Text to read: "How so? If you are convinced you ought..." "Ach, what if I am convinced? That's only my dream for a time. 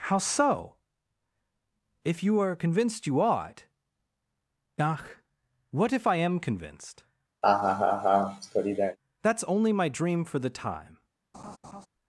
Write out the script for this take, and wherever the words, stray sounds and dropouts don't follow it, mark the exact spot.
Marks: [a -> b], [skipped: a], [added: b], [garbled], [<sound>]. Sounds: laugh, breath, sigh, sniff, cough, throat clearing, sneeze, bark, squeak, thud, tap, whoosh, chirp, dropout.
"How so? If you are convinced you ought..." "Ach, what if I am convinced? [laugh] That's only my dream for [a -> the] time. [laugh]